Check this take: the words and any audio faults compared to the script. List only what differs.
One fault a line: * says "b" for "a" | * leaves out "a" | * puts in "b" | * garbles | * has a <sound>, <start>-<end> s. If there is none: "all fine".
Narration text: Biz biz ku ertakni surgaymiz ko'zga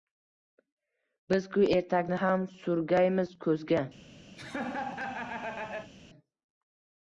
* leaves out "biz"
* puts in "ham"
* has a laugh, 4.4-5.9 s